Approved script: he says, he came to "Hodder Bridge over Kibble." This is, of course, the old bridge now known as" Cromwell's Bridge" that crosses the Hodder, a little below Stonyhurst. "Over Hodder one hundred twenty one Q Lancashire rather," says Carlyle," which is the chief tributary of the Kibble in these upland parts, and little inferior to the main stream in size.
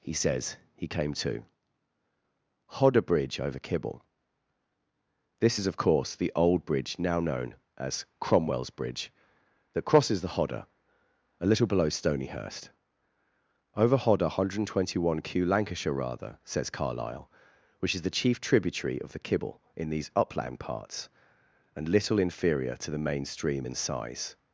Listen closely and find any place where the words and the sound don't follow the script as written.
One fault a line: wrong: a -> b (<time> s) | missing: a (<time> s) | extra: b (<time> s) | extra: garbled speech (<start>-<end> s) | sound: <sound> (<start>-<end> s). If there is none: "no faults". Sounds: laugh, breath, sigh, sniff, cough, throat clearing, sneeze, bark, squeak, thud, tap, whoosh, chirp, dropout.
no faults